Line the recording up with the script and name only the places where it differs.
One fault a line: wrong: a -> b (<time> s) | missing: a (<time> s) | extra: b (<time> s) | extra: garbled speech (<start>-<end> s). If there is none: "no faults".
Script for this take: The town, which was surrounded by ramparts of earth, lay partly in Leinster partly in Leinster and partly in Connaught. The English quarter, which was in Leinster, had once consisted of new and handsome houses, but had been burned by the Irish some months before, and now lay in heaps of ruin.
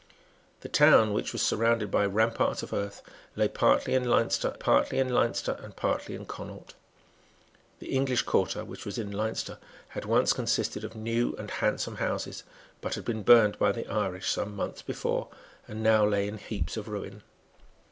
no faults